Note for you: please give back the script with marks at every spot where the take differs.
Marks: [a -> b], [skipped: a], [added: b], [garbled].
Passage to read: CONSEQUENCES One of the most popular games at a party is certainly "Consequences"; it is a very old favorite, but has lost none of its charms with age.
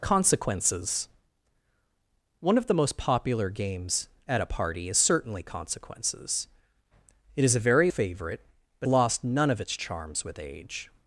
CONSEQUENCES One of the most popular games at a party is certainly "Consequences"; it is a very [skipped: old] favorite, but [skipped: has] lost none of its charms with age.